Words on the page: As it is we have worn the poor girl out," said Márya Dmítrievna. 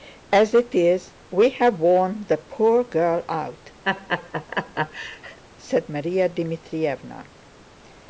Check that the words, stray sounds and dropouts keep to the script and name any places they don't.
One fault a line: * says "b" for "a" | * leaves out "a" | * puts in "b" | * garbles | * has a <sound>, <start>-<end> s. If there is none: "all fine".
* has a laugh, 3.8-5.4 s